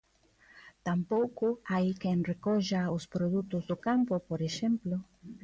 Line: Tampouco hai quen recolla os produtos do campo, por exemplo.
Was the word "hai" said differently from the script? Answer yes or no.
no